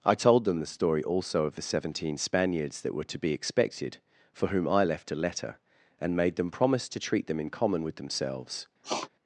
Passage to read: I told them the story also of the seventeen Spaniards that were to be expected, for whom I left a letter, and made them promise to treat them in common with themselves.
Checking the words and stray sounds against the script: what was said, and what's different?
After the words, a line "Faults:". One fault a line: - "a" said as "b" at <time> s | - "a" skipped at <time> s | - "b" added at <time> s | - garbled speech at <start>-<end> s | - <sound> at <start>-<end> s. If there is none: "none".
I told them the story also of the seventeen Spaniards that were to be expected, for whom I left a letter, and made them promise to treat them in common with themselves.
Faults:
- sniff at 8.8-9.1 s